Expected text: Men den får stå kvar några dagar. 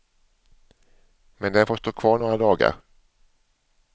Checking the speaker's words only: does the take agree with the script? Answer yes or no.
yes